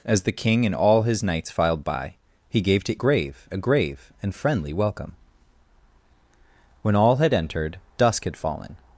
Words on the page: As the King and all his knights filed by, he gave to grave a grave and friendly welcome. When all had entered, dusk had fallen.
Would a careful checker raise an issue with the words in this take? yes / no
no